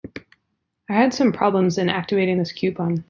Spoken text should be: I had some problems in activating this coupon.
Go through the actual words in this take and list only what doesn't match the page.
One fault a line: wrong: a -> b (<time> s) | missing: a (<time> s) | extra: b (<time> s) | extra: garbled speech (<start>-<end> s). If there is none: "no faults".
no faults